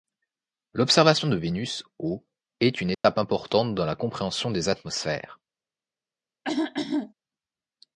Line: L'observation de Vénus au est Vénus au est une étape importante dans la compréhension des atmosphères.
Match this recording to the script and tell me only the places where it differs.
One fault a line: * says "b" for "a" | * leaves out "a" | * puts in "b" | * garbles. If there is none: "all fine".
* leaves out "Vénus au est"